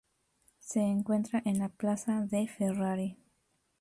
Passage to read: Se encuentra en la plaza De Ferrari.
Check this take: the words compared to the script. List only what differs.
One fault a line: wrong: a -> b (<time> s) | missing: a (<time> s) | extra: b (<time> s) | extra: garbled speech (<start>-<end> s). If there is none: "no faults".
no faults